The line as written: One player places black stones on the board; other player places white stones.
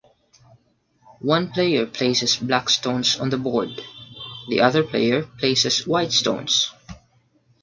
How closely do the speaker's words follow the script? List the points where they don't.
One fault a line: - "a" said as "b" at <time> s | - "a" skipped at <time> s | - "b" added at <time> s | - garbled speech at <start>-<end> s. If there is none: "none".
- "the" added at 4.5 s